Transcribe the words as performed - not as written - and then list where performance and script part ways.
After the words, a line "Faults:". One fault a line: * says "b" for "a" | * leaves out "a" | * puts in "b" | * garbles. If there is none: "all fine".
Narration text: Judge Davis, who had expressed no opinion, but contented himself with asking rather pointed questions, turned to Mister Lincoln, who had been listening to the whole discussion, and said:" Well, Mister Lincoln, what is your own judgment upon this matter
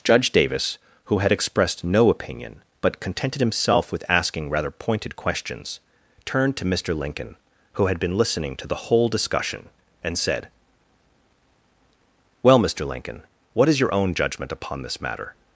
Judge Davis, who had expressed no opinion, but contented himself with asking rather pointed questions, turned to Mister Lincoln, who had been listening to the whole discussion, and said:" Well, Mister Lincoln, what is your own judgment upon this matter
Faults:
all fine